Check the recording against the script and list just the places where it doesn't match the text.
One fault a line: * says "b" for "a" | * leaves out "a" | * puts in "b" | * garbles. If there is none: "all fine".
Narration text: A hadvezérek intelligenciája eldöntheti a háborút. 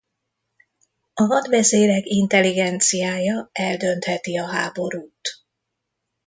all fine